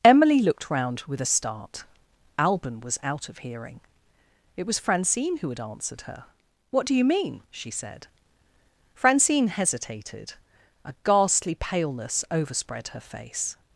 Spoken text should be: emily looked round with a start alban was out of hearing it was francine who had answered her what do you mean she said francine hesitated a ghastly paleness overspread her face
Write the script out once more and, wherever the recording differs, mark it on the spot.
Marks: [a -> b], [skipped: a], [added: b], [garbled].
emily looked round with a start alban was out of hearing it was francine who had answered her what do you mean she said francine hesitated a ghastly paleness overspread her face